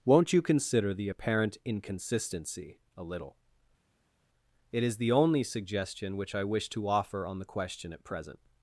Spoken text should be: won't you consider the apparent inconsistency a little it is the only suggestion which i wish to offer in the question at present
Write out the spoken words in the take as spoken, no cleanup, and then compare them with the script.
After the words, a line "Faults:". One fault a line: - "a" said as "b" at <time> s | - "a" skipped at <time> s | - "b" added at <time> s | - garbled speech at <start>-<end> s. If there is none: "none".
won't you consider the apparent inconsistency a little it is the only suggestion which i wish to offer on the question at present
Faults:
- "in" said as "on" at 7.3 s